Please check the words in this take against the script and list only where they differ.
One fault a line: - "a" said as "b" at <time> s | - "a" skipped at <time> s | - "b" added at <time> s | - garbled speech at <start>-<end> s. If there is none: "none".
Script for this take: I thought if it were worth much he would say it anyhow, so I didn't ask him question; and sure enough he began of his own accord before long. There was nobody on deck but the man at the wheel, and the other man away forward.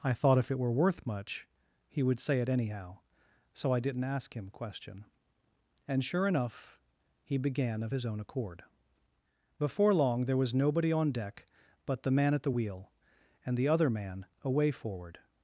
none